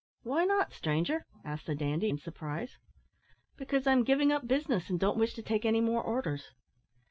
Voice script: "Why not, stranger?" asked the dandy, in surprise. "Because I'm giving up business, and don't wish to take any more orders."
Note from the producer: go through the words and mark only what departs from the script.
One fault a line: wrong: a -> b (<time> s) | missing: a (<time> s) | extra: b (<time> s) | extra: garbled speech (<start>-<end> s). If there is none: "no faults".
no faults